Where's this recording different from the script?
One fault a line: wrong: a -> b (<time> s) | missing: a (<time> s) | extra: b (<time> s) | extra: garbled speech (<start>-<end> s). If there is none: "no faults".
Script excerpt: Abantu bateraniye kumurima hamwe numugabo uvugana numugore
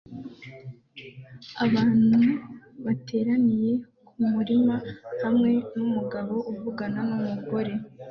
no faults